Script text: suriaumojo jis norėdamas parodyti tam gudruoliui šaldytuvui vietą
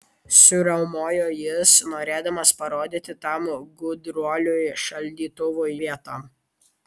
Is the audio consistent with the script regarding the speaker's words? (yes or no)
yes